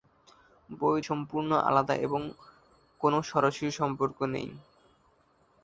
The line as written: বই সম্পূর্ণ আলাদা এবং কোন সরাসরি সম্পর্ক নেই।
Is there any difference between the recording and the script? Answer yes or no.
no